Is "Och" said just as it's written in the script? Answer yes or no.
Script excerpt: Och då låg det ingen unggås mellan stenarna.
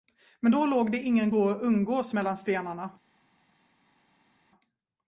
no